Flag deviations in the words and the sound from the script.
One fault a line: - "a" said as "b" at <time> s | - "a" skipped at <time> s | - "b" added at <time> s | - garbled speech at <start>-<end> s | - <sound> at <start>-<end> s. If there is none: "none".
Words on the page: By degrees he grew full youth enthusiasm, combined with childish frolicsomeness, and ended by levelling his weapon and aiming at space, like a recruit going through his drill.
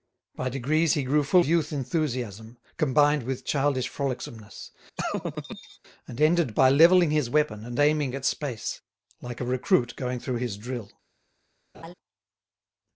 - laugh at 5.0-5.8 s
- laugh at 11.7-11.9 s